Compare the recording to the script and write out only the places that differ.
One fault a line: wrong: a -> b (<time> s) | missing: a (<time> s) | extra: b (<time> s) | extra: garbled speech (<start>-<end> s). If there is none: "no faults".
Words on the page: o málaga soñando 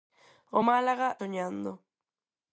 no faults